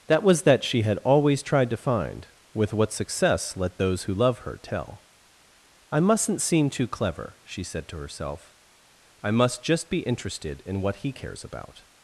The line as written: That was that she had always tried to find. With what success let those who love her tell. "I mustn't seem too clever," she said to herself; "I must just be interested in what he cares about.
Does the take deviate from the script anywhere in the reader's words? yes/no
no